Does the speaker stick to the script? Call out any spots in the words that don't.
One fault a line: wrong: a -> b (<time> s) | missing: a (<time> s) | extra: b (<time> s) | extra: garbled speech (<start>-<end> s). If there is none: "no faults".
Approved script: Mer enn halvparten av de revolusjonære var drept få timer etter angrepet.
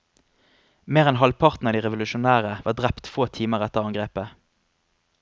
no faults